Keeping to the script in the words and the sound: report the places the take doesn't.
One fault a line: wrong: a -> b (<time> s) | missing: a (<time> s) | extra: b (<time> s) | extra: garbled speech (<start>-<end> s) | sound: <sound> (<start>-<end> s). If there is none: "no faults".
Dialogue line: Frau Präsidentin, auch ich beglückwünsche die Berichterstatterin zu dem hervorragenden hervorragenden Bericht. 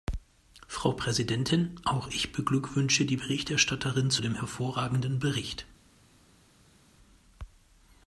missing: hervorragenden (5.2 s)